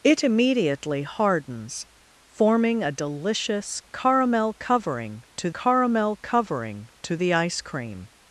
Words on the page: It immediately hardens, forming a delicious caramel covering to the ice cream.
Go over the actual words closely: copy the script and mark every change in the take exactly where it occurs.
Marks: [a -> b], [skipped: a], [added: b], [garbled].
It immediately hardens, forming a delicious caramel covering to [added: caramel covering to] the ice cream.